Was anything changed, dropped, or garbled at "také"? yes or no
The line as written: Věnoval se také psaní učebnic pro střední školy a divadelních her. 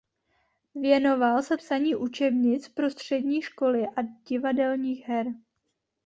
yes